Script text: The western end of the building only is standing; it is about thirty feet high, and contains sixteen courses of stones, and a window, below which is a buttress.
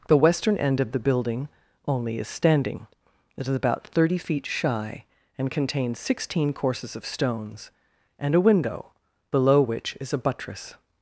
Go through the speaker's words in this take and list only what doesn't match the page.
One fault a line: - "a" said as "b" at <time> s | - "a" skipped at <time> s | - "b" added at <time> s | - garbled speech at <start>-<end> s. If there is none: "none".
- "high" said as "shy" at 4.5 s